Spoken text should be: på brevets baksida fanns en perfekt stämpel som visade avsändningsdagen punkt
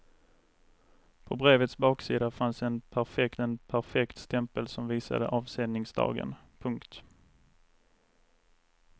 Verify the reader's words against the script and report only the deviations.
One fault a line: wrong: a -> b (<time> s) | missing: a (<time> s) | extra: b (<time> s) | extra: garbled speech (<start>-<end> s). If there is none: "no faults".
extra: en perfekt (3.4 s)